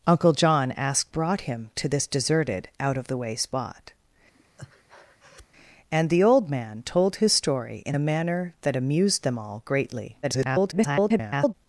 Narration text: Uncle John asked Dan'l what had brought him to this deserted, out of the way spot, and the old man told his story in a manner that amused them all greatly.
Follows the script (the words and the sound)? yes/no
no